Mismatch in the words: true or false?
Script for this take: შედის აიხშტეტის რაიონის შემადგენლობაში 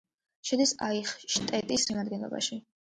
true